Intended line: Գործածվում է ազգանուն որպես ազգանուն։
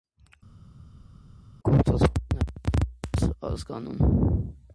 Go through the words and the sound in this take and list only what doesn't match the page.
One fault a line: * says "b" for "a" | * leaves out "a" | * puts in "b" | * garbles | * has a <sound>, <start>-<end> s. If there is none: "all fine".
* says "նաև" for "ազգանուն"